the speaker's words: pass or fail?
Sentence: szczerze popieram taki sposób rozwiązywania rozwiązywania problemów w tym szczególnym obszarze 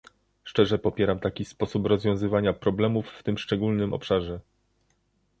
fail